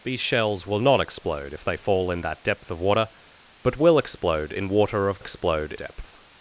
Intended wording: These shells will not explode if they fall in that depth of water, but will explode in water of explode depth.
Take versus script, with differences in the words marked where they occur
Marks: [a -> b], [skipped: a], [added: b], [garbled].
These shells will not explode if they fall in that depth of water, but will explode in water of explode depth.